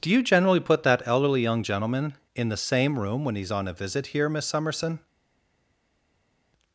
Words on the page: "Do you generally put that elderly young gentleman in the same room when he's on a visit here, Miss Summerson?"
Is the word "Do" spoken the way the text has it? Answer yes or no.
yes